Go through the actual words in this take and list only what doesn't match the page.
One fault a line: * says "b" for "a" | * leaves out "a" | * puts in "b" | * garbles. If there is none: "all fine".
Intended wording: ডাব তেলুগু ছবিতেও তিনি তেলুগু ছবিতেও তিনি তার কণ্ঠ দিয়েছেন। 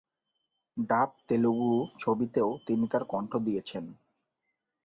* leaves out "তেলুগু ছবিতেও তিনি"